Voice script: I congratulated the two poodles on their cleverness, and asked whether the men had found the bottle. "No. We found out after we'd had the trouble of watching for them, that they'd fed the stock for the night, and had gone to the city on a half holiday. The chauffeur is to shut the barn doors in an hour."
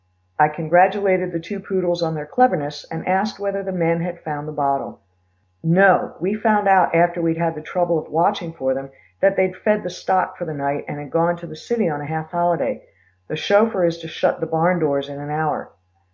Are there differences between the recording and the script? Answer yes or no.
no